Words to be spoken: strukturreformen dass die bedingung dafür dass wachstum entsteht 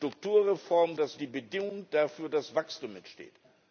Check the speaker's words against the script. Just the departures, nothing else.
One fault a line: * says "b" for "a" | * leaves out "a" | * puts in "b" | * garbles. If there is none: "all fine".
all fine